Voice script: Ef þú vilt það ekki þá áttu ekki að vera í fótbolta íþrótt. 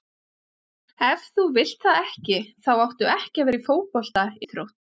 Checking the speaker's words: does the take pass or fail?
pass